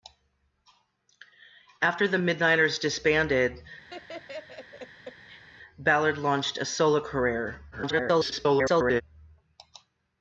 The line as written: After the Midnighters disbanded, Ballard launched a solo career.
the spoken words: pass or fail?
fail